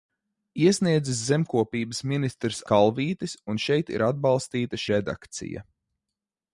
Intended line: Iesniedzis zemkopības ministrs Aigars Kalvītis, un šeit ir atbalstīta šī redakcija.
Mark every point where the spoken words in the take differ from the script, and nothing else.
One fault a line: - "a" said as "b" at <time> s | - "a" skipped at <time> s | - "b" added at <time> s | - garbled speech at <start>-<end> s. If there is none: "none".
- "Aigars" skipped at 2.6 s
- "šī" skipped at 4.8 s